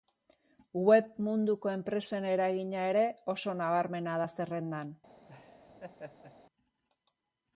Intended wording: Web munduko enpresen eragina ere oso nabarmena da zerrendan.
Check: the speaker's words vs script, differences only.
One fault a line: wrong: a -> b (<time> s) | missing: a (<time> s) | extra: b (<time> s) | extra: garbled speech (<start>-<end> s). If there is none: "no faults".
no faults